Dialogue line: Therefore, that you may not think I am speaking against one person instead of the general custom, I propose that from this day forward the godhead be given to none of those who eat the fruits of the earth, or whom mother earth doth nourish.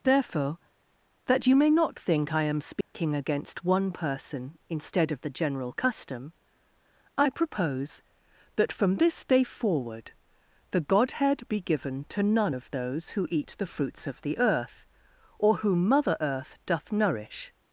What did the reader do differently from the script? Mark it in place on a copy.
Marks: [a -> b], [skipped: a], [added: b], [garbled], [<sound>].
Therefore, that you may not think I am speaking [dropout] against one person instead of the general custom, I propose that from this day forward the godhead be given to none of those who eat the fruits of the earth, or whom mother earth doth nourish.